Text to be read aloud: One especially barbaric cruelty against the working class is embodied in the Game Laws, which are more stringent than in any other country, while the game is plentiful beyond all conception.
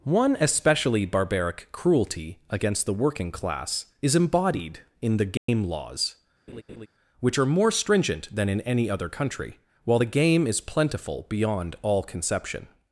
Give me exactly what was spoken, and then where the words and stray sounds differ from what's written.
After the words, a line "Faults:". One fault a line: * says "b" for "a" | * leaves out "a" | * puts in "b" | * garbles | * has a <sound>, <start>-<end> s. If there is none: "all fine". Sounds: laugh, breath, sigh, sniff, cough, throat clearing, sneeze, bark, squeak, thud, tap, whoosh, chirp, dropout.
One especially barbaric cruelty against the working class is embodied in the Game Laws, which are more stringent than in any other country, while the game is plentiful beyond all conception.
Faults:
* has a dropout, 5.4-5.5 s
* has a laugh, 6.5-6.9 s